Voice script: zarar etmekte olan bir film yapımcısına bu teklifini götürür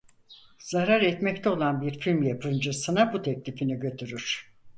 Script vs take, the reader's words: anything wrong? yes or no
no